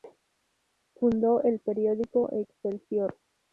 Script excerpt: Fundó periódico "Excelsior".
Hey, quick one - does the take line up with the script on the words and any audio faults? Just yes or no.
no